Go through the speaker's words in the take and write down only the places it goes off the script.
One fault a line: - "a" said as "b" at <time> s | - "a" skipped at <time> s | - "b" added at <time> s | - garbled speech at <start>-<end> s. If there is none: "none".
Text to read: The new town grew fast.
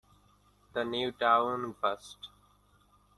- "grew" skipped at 1.7 s